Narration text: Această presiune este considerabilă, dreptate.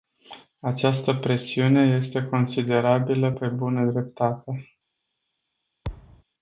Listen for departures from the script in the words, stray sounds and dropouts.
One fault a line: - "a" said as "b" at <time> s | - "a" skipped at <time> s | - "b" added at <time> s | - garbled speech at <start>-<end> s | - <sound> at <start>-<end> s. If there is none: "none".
- "pe bună" added at 3.3 s
- thud at 5.8-6.2 s